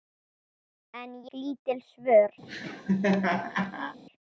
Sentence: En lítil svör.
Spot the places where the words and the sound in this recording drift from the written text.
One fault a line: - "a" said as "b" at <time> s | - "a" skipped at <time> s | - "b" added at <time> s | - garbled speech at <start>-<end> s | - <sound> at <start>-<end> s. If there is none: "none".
- laugh at 2.4-4.0 s